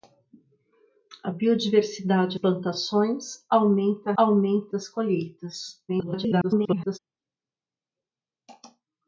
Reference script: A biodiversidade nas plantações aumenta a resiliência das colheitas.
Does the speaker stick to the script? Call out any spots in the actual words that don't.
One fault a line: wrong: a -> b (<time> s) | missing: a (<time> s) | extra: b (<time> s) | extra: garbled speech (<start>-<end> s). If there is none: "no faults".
missing: nas (2.4 s)
wrong: resiliência -> aumenta (4.2 s)
extra: garbled speech (5.9-7.0 s)